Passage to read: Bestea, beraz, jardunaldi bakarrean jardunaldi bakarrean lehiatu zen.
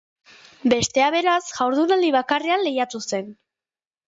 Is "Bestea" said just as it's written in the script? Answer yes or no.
yes